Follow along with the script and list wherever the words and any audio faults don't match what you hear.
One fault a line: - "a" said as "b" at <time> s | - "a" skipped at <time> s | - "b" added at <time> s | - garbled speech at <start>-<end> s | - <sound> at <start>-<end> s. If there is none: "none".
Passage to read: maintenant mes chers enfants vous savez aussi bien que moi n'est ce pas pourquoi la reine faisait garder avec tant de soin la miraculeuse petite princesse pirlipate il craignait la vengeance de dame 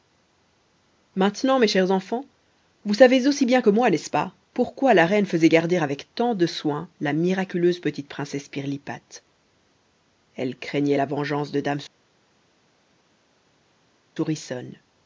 - "il" said as "elle" at 10.3 s